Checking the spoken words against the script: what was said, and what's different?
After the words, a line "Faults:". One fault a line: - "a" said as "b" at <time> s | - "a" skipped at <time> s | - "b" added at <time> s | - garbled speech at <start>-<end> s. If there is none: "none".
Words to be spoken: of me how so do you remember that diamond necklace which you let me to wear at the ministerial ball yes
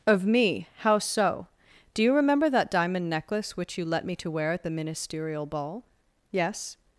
of me how so do you remember that diamond necklace which you let me to wear at the ministerial ball yes
Faults:
none